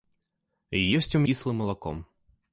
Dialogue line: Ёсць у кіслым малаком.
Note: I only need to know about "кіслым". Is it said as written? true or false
true